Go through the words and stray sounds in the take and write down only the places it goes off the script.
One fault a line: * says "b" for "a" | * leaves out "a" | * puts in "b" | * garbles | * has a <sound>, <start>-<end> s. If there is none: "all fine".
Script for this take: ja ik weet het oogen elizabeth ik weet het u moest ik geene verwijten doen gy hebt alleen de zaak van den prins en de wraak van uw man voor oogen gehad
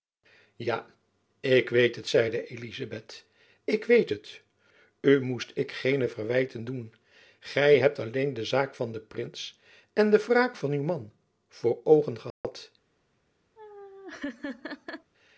* says "zeide" for "oogen"
* has a dropout, 12.3-12.4 s
* has a laugh, 13.6-15.1 s